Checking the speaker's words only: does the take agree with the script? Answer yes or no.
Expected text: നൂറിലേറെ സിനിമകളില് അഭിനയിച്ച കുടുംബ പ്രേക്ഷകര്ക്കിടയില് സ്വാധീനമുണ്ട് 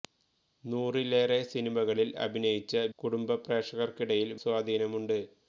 yes